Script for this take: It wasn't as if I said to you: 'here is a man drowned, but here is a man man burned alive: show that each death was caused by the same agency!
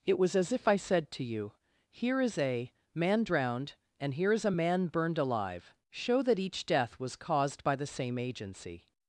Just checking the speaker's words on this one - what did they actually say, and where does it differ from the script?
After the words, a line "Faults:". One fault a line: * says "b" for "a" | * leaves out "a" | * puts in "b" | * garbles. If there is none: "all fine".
It was as if I said to you: 'here is a man drowned, and here is a man burned alive: show that each death was caused by the same agency!
Faults:
* says "was" for "wasn't"
* says "and" for "but"
* leaves out "man"